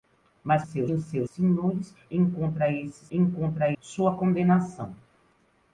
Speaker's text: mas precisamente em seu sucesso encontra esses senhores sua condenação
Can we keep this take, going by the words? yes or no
no